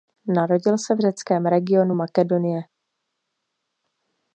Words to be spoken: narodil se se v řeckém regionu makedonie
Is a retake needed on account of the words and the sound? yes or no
yes